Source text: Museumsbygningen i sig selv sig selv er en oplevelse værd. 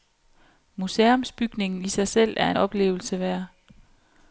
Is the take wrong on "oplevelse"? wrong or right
right